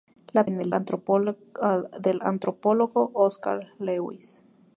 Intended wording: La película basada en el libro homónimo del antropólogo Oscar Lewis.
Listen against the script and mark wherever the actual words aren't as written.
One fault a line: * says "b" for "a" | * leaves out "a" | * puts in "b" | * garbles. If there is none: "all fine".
* leaves out "película basada"
* leaves out "libro homónimo del"